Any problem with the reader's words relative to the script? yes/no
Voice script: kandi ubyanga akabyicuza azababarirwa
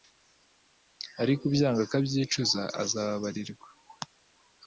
yes